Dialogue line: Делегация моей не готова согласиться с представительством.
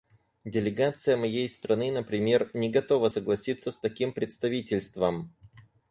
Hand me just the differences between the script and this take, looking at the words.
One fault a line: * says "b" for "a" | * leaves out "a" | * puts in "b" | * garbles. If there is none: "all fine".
* puts in "страны например"
* puts in "таким"